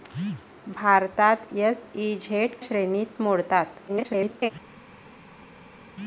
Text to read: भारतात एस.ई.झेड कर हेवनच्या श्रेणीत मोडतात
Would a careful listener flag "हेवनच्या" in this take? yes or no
yes